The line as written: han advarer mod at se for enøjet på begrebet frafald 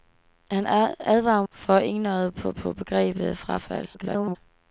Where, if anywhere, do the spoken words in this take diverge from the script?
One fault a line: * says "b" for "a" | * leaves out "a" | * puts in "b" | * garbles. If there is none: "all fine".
* leaves out "mod at se"
* puts in "på"
* garbles